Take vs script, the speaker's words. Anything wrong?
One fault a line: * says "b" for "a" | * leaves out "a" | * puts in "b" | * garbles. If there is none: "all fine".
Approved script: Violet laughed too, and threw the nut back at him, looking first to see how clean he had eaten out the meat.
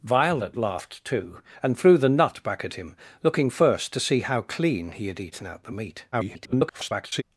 * garbles